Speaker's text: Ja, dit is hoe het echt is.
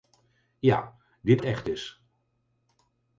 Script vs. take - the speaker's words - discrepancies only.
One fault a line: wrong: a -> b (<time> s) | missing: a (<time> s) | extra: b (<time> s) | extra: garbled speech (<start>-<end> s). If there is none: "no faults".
missing: is hoe (1.4 s)